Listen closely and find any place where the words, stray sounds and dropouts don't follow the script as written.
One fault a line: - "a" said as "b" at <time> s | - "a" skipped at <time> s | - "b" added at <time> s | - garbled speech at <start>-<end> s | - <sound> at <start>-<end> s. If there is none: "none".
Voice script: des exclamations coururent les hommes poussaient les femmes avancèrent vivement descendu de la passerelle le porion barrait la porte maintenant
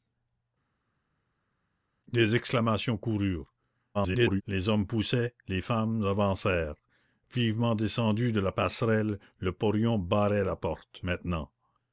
- garbled speech at 3.9-4.4 s